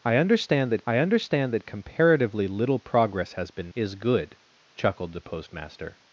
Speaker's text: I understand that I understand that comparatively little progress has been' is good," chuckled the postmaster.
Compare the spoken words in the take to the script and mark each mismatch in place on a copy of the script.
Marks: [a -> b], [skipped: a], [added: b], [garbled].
I understand that I understand that comparatively little progress has been' is good," chuckled the postmaster.